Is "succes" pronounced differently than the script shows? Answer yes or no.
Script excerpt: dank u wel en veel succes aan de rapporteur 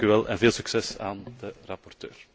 no